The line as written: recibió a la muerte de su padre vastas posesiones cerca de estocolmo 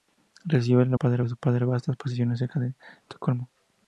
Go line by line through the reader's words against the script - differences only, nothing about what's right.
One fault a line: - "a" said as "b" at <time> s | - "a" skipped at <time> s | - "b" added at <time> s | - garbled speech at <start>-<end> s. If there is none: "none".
- "muerte" said as "padre" at 0.9 s